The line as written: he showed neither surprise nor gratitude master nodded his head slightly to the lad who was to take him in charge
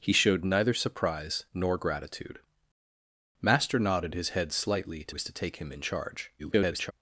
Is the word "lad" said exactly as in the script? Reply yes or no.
no